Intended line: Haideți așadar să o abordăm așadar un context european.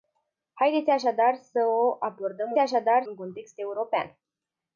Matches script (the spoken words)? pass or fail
pass